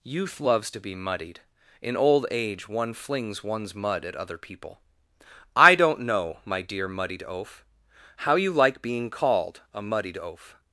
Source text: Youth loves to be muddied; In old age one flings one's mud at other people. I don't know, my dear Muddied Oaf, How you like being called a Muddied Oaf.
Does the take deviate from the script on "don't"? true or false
false